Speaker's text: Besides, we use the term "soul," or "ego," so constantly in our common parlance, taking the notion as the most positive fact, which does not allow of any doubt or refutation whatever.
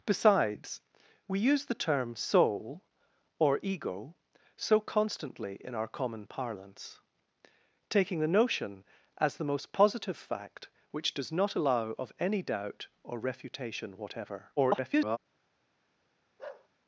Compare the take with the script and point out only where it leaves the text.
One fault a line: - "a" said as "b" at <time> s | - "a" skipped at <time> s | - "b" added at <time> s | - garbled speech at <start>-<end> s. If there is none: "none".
- garbled speech at 14.6-15.2 s